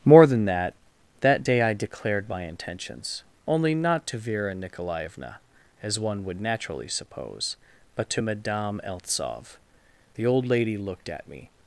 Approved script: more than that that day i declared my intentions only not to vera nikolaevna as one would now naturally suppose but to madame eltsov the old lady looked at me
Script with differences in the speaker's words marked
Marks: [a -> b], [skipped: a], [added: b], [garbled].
more than that that day i declared my intentions only not to vera nikolaevna as one would [skipped: now] naturally suppose but to madame eltsov the old lady looked at me